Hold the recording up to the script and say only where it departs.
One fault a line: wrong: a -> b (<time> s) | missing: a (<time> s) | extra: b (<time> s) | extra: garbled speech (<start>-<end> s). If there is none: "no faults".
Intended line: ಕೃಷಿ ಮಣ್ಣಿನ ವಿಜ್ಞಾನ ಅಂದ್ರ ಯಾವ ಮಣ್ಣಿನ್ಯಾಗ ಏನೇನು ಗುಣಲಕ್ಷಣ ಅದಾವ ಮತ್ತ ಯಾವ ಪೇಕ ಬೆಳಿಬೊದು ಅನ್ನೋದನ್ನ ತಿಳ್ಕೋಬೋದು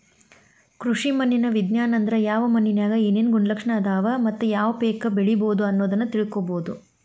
no faults